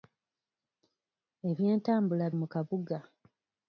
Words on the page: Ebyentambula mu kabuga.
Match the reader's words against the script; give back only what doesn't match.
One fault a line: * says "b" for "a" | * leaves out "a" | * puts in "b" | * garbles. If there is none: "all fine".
all fine